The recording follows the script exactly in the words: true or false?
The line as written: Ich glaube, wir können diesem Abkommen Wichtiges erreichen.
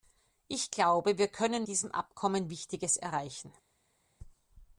true